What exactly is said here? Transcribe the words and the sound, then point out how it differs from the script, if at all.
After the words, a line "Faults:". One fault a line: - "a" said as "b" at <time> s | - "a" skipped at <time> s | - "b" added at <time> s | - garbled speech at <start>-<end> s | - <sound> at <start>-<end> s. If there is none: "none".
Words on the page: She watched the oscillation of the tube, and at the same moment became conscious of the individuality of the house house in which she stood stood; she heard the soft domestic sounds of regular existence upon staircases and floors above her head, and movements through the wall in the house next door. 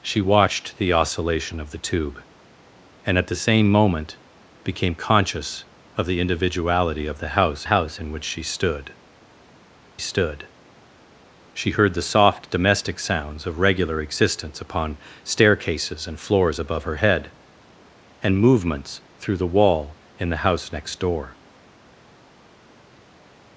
She watched the oscillation of the tube, and at the same moment became conscious of the individuality of the house house in which she stood stood; she heard the soft domestic sounds of regular existence upon staircases and floors above her head, and movements through the wall in the house next door.
Faults:
none